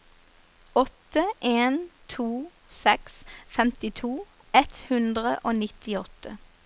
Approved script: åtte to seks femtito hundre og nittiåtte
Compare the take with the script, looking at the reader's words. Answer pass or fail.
fail